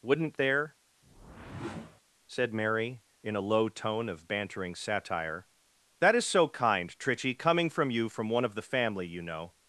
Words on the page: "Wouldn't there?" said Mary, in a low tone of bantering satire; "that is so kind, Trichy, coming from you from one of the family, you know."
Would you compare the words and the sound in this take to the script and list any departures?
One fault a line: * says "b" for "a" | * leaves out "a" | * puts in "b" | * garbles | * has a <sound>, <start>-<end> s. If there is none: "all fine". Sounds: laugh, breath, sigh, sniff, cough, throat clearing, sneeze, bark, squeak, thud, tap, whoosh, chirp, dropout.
* has a whoosh, 1.0-2.0 s